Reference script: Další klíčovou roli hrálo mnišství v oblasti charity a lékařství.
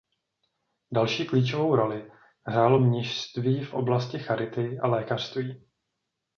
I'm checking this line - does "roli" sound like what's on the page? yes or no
yes